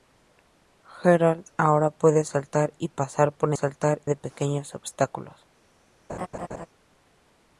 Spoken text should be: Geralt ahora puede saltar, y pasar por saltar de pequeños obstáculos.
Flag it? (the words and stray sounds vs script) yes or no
yes